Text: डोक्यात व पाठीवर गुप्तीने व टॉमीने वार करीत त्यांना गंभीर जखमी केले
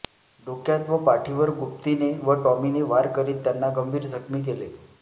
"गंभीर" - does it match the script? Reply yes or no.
yes